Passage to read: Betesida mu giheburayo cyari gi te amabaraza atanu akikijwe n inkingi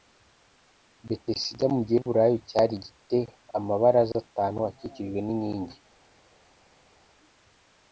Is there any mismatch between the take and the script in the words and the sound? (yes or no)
no